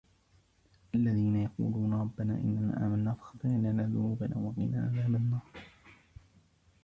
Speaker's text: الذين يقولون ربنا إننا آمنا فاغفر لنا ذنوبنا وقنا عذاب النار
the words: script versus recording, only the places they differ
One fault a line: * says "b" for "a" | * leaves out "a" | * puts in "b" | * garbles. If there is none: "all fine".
all fine